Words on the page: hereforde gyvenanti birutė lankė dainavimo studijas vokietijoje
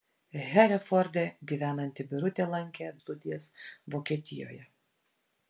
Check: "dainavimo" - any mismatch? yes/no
yes